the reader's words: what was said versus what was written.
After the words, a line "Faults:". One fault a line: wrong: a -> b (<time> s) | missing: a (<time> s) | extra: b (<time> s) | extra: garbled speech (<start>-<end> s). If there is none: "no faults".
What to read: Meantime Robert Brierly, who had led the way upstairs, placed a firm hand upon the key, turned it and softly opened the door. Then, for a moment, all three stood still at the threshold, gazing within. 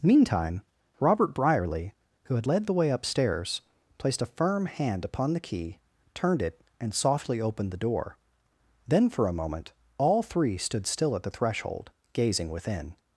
Meantime Robert Brierly, who had led the way upstairs, placed a firm hand upon the key, turned it and softly opened the door. Then, for a moment, all three stood still at the threshold, gazing within.
Faults:
no faults